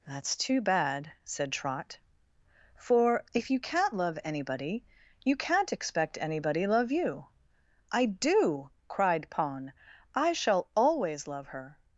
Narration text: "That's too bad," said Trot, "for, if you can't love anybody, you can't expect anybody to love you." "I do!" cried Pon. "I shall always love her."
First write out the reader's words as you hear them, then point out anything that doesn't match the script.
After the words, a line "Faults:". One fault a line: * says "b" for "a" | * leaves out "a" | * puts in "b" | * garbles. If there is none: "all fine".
"That's too bad," said Trot, "for, if you can't love anybody, you can't expect anybody love you." "I do!" cried Pon. "I shall always love her."
Faults:
* leaves out "to"